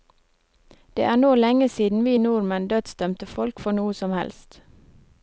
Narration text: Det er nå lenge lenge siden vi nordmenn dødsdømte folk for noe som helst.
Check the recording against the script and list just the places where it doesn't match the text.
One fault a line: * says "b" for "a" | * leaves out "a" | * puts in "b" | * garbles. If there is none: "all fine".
* leaves out "lenge"